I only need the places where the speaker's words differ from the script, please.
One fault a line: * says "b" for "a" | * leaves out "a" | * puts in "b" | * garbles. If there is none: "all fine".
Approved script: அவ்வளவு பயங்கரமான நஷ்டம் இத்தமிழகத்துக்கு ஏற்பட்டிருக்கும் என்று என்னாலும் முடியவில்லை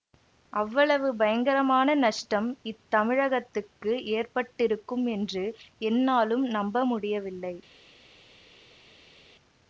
* puts in "நம்ப"